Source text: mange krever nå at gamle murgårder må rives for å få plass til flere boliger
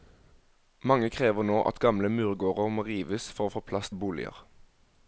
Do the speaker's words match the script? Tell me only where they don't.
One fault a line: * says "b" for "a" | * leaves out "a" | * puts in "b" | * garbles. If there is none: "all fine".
* leaves out "til flere"